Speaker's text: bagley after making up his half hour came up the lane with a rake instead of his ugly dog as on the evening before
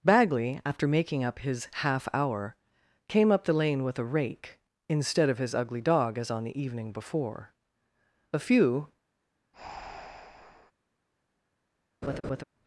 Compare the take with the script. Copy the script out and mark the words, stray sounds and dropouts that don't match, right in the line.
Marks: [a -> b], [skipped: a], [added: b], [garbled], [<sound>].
bagley after making up his half hour came up the lane with a rake instead of his ugly dog as on the evening before [added: a few] [breath] [laugh]